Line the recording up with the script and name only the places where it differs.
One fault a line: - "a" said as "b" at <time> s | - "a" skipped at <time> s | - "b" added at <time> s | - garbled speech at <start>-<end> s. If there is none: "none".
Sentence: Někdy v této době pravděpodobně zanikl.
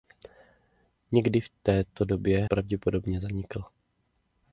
none